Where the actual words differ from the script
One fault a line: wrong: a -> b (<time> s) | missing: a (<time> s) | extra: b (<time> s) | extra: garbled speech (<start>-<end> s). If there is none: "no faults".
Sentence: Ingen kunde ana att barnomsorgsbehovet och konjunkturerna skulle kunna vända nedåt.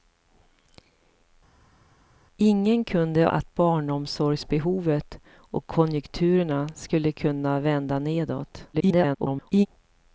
missing: ana (3.3 s)
extra: garbled speech (8.7-9.7 s)